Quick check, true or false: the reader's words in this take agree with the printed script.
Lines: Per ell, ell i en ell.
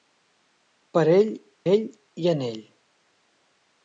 true